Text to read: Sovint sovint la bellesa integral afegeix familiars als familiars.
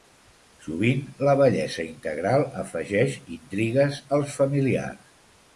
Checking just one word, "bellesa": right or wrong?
right